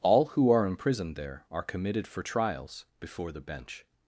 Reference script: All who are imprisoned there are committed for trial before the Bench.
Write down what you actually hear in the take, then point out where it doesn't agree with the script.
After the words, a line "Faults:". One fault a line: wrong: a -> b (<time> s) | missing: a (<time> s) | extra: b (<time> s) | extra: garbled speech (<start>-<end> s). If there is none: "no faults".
All who are imprisoned there are committed for trials before the Bench.
Faults:
wrong: trial -> trials (2.2 s)